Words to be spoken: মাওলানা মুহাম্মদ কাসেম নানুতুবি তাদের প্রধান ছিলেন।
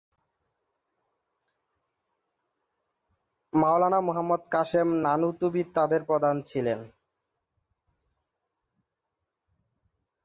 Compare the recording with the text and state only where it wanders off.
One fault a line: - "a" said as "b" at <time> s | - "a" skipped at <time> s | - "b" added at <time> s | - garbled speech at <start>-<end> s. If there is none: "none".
none